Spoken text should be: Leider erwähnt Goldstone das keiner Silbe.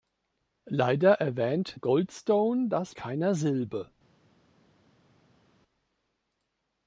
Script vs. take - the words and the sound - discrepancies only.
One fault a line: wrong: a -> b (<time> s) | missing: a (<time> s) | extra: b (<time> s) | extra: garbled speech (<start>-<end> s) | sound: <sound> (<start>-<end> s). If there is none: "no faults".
no faults